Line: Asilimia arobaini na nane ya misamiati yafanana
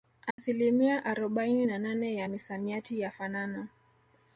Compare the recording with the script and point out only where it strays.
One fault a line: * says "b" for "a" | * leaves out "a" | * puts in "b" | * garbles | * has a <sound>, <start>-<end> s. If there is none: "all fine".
* has a dropout, 0.3-0.4 s